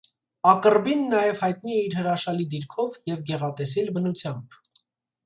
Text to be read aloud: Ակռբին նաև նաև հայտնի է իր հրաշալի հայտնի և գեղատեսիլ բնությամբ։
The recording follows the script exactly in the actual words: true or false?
false